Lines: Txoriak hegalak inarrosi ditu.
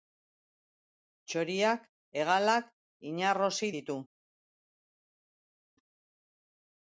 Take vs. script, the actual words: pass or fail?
pass